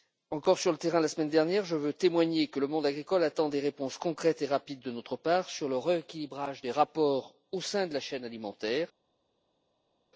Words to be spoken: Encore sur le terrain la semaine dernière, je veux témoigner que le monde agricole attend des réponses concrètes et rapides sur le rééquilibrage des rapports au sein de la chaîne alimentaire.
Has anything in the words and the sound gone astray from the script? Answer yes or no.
yes